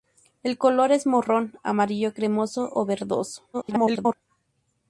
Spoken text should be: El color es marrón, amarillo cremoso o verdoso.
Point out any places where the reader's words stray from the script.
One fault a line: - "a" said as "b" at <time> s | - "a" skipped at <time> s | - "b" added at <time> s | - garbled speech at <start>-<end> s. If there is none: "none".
- garbled speech at 3.5-4.1 s